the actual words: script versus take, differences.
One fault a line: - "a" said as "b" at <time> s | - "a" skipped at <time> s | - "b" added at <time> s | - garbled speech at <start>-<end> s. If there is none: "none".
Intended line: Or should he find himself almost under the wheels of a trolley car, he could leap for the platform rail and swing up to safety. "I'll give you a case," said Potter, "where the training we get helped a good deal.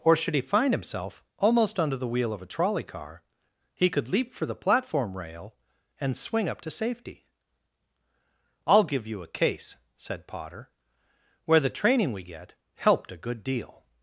- "wheels" said as "wheel" at 2.1 s